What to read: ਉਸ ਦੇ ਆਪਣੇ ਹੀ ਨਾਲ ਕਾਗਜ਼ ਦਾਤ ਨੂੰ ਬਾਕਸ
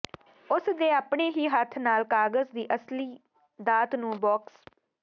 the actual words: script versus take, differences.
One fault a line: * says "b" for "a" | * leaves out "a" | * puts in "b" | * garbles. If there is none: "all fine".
* puts in "ਹੱਥ"
* puts in "ਦੀ ਅਸਲੀ"